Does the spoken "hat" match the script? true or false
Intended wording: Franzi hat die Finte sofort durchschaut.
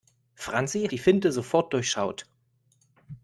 false